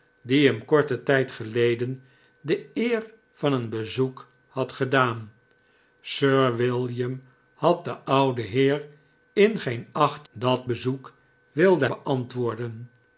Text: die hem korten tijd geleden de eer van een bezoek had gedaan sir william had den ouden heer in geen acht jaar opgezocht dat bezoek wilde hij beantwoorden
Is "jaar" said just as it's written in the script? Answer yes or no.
no